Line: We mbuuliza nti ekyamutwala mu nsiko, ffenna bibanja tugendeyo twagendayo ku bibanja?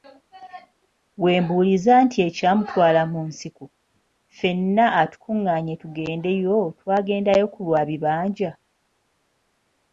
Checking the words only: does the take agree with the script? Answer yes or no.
no